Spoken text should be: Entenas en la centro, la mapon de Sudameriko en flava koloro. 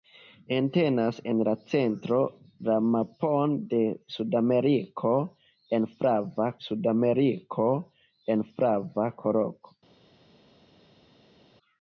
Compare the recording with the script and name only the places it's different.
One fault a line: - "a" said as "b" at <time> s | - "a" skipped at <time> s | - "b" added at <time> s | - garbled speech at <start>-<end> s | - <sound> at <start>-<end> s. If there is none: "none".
- "Sudameriko en flava" added at 6.7 s